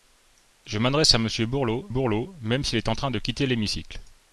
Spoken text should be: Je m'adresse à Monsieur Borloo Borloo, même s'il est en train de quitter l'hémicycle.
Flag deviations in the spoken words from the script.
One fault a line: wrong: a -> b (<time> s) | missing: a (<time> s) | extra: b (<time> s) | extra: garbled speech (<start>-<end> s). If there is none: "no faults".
no faults